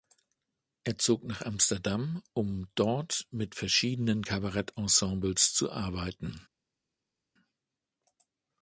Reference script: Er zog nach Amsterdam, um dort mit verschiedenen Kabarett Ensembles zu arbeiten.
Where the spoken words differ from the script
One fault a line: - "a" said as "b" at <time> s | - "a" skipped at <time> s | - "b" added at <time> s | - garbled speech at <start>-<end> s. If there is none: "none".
none